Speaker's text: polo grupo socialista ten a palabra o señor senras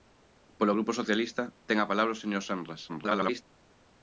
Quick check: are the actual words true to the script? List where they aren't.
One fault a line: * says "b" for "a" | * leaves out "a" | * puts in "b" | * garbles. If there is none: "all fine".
* garbles